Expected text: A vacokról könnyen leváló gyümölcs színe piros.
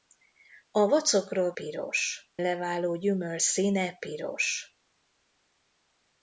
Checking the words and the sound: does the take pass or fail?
fail